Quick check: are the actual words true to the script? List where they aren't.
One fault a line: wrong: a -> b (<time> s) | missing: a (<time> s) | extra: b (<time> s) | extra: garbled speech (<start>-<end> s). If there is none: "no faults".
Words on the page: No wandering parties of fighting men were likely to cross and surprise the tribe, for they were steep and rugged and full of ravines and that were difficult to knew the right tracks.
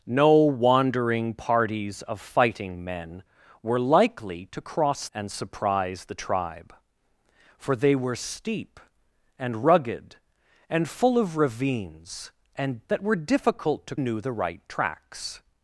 no faults